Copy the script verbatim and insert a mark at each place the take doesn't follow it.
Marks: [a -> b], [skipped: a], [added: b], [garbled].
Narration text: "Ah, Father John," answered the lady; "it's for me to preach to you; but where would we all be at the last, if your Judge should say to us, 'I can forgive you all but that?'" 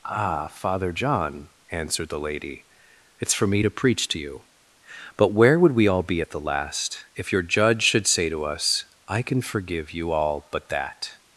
"Ah, Father John," answered the lady; "it's for me to preach to you; but where would we all be at the last, if your Judge should say to us, 'I can forgive you all but that?'"